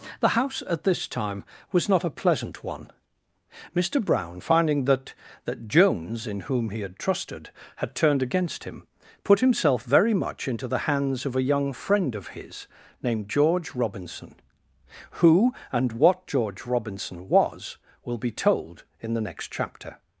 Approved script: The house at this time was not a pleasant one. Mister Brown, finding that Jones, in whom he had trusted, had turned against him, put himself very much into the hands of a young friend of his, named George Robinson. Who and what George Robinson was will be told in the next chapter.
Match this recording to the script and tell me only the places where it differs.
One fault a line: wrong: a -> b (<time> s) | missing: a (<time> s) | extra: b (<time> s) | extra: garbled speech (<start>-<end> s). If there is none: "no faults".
extra: that (5.5 s)